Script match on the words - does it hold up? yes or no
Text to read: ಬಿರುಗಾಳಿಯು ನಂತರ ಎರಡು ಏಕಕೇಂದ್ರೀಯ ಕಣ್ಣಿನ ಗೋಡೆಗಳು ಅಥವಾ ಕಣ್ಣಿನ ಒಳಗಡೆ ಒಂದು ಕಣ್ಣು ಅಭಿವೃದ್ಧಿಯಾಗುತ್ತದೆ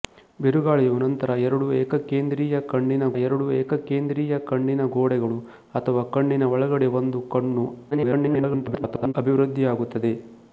no